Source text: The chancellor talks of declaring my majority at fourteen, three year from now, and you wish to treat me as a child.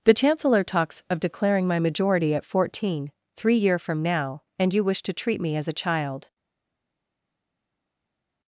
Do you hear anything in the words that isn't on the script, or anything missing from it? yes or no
no